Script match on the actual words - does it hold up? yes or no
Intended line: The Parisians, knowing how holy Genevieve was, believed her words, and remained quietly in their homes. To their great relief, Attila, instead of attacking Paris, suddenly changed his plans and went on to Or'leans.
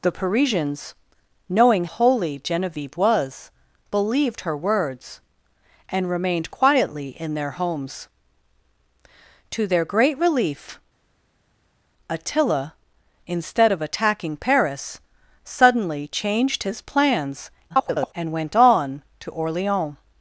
no